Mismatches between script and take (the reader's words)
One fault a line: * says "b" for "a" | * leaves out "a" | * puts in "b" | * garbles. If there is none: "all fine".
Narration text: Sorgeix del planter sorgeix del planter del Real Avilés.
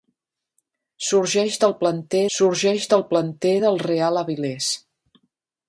all fine